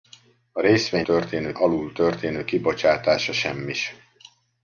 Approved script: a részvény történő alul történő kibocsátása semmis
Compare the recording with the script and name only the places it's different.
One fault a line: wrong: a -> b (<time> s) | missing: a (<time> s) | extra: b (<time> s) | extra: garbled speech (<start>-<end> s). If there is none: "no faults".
no faults